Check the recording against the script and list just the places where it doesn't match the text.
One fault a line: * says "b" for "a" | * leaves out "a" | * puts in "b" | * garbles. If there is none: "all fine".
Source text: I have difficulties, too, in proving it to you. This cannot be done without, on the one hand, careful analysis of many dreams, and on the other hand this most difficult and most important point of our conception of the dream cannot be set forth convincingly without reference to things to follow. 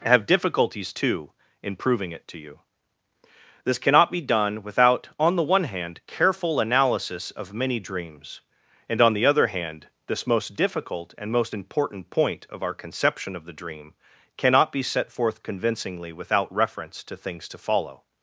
* leaves out "I"